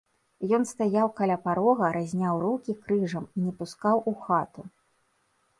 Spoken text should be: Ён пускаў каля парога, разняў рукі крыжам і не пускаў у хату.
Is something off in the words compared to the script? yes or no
yes